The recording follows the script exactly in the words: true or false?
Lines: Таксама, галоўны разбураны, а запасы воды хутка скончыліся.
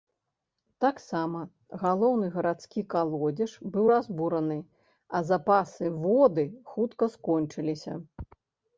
false